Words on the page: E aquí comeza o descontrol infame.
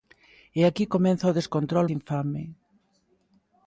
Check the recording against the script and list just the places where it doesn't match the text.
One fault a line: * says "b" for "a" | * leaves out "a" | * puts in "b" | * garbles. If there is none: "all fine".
all fine